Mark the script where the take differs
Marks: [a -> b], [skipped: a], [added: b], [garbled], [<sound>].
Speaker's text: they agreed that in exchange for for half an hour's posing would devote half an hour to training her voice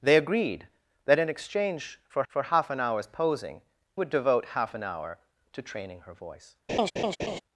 they agreed that in exchange for for half an hour's posing would devote half an hour to training her voice [laugh]